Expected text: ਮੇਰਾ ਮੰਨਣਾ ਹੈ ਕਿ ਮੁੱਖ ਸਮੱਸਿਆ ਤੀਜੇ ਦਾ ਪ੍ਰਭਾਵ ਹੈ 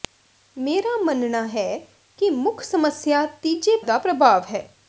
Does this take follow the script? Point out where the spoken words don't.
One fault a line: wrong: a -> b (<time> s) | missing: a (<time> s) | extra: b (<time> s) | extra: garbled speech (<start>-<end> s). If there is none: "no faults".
no faults